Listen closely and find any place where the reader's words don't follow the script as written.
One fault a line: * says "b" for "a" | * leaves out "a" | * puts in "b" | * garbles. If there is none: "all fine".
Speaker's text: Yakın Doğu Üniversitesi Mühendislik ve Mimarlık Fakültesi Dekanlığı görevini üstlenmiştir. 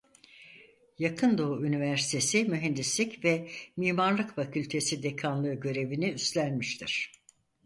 all fine